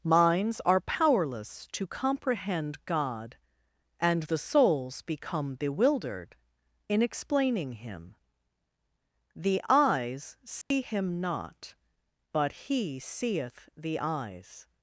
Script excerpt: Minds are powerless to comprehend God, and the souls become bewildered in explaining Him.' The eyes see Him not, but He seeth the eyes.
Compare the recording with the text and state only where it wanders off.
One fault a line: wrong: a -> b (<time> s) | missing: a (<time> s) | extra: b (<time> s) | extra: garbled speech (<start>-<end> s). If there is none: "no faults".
no faults